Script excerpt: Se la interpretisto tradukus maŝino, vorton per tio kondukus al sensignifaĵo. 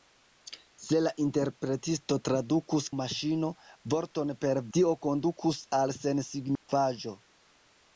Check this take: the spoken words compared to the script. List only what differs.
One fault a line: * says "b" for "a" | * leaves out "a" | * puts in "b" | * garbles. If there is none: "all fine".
all fine